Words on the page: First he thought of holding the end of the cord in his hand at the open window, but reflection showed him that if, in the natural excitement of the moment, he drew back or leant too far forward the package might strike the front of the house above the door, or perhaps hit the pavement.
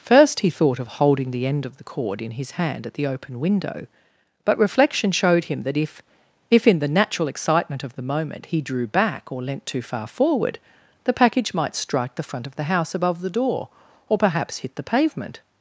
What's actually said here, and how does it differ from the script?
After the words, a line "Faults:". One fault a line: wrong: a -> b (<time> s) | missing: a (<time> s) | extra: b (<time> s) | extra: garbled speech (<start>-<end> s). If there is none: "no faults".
First he thought of holding the end of the cord in his hand at the open window, but reflection showed him that if if, in the natural excitement of the moment, he drew back or leant too far forward the package might strike the front of the house above the door, or perhaps hit the pavement.
Faults:
extra: if (6.5 s)